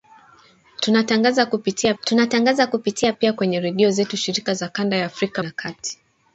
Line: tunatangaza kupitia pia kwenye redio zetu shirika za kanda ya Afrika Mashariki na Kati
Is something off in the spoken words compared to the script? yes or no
yes